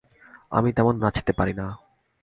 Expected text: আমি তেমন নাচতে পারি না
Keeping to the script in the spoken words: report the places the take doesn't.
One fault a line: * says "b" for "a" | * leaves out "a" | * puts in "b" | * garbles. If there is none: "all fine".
all fine